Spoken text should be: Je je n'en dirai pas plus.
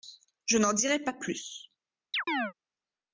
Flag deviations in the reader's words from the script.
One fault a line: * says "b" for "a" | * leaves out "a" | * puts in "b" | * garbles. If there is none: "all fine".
* leaves out "je"